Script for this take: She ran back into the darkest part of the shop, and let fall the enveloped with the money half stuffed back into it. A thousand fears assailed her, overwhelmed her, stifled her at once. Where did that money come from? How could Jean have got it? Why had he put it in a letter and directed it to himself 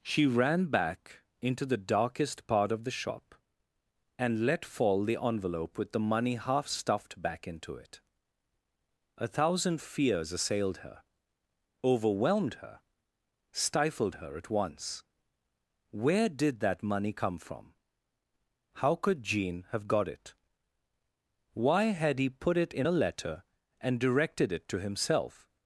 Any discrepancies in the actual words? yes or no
yes